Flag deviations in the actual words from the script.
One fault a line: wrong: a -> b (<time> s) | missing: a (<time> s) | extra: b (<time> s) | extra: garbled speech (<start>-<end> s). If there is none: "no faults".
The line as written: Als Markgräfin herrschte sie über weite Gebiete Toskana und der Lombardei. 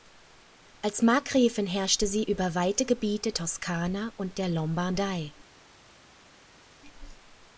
no faults